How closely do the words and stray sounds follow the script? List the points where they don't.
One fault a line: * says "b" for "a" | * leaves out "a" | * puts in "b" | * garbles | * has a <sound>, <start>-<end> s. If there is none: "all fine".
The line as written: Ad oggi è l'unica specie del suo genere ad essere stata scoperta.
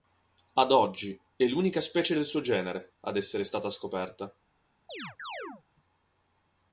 * has a chirp, 4.9-5.6 s